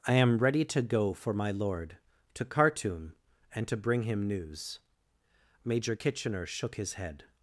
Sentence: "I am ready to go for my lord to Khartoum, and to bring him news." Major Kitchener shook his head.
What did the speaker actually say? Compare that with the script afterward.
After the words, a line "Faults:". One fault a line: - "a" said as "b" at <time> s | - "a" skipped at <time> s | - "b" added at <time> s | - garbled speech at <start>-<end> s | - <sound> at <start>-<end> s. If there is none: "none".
"I am ready to go for my lord to Khartoum, and to bring him news." Major Kitchener shook his head.
Faults:
none